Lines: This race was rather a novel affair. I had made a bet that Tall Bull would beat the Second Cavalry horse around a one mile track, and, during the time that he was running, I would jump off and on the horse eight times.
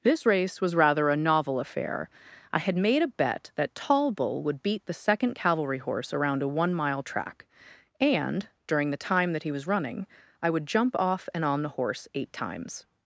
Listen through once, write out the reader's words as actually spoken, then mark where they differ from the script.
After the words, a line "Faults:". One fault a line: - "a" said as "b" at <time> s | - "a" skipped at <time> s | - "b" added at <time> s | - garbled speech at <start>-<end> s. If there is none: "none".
This race was rather a novel affair. I had made a bet that Tall Bull would beat the Second Cavalry horse around a one mile track, and, during the time that he was running, I would jump off and on the horse eight times.
Faults:
none